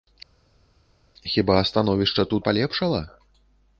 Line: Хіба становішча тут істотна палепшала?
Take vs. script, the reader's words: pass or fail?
fail